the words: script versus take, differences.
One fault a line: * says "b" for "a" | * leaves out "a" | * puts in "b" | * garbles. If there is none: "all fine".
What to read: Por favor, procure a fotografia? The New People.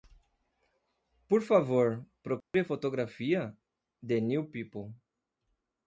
all fine